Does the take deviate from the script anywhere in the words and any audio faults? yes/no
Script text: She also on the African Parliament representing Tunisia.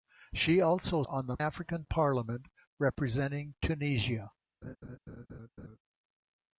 yes